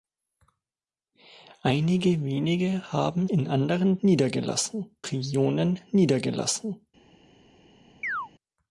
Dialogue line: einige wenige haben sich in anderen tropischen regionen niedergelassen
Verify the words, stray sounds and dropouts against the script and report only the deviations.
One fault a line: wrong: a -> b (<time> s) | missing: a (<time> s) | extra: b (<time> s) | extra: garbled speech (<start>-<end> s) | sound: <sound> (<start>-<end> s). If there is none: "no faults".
missing: sich (3.3 s)
wrong: tropischen -> niedergelassen (4.0 s)
sound: chirp (8.0-8.3 s)